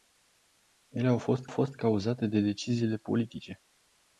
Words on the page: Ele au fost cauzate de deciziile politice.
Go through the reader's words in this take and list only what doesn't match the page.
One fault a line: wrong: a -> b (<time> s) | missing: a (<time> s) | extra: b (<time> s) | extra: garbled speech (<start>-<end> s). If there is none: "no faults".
extra: fost (1.5 s)